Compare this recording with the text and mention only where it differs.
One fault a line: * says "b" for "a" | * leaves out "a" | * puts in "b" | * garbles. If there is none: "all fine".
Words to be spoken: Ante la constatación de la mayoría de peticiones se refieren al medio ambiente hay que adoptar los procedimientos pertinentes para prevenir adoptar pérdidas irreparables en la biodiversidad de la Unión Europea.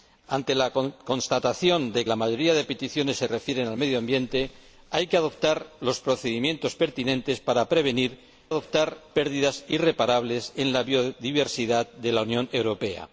all fine